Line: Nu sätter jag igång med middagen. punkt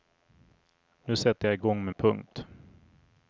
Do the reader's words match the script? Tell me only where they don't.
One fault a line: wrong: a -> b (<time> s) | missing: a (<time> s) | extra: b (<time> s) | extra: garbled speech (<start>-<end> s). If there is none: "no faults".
missing: middagen (1.9 s)